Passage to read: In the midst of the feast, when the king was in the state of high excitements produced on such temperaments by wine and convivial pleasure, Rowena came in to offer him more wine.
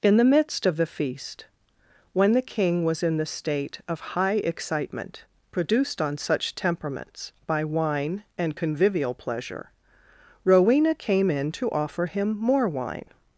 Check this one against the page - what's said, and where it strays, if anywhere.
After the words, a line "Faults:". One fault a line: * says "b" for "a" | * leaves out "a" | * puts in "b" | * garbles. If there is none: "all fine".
In the midst of the feast, when the king was in the state of high excitement produced on such temperaments by wine and convivial pleasure, Rowena came in to offer him more wine.
Faults:
* says "excitement" for "excitements"